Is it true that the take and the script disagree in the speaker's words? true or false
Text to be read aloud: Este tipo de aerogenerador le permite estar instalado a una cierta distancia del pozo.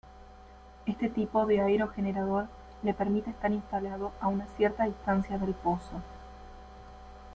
false